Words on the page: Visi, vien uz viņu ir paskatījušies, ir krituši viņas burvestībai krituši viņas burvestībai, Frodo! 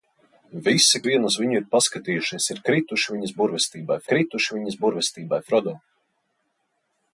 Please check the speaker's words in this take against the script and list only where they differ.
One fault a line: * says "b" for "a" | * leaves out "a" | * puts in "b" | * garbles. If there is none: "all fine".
all fine